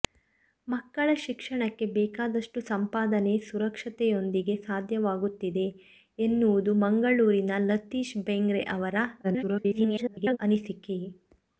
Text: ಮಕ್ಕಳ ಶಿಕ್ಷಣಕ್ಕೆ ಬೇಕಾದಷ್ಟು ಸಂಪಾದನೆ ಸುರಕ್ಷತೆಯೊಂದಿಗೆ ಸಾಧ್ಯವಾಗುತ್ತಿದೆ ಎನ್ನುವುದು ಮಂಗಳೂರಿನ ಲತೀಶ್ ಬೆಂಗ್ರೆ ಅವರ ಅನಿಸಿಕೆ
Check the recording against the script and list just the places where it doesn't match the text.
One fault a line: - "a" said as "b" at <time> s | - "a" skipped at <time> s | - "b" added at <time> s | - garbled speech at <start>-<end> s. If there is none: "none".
- garbled speech at 9.2-10.4 s